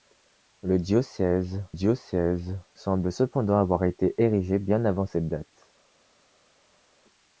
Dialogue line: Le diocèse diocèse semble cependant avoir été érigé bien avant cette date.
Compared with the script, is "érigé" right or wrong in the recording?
right